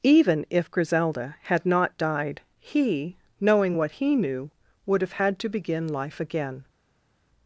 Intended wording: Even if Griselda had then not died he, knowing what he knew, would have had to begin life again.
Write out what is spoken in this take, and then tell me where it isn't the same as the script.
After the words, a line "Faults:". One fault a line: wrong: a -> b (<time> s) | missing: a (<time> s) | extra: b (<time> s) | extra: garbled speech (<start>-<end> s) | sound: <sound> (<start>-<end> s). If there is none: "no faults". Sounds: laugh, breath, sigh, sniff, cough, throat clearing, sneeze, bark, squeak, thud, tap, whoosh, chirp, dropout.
Even if Griselda had not died he, knowing what he knew, would have had to begin life again.
Faults:
missing: then (1.6 s)